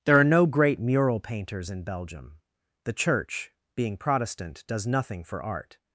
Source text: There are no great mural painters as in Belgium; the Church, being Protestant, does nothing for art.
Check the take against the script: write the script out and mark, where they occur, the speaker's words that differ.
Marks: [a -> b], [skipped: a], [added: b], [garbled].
There are no great mural painters [skipped: as] in Belgium; the Church, being Protestant, does nothing for art.